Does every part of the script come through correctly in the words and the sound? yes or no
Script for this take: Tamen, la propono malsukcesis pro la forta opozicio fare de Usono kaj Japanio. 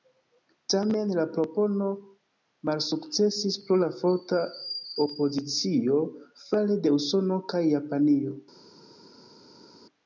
yes